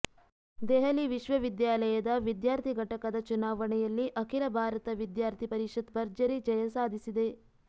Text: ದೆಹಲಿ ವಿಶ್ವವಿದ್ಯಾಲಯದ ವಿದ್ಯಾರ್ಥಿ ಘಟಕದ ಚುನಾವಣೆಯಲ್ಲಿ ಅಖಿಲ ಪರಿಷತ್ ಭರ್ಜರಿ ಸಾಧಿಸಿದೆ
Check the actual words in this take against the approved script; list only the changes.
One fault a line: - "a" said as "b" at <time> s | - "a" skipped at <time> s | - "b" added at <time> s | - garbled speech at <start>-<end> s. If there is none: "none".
- "ಭಾರತ ವಿದ್ಯಾರ್ಥಿ" added at 4.6 s
- "ಜಯ" added at 6.5 s